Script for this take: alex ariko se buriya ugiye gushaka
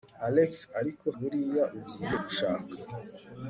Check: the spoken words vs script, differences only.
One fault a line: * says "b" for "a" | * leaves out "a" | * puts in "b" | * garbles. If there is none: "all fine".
* leaves out "se"